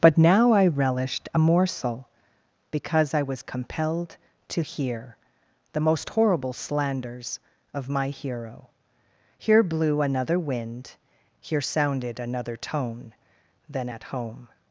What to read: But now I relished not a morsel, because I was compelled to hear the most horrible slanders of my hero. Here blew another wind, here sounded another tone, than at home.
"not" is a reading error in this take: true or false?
true